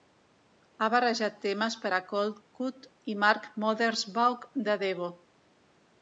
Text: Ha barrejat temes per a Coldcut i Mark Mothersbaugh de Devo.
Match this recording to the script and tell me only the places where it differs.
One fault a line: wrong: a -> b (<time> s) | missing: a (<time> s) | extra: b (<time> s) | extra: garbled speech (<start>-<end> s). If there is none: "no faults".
no faults